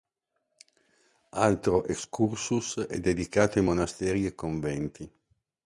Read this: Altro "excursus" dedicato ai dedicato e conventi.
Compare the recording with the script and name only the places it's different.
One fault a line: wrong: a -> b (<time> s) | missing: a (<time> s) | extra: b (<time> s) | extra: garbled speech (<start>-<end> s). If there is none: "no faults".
extra: è (2.9 s)
wrong: dedicato -> monasteri (3.6 s)